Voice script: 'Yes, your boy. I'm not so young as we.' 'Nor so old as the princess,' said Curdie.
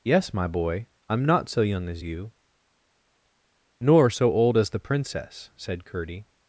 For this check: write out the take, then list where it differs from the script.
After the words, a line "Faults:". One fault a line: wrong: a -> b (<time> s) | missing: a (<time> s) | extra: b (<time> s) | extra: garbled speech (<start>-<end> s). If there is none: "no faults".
'Yes, my boy. I'm not so young as you.' 'Nor so old as the princess,' said Curdie.
Faults:
wrong: your -> my (0.3 s)
wrong: we -> you (2.0 s)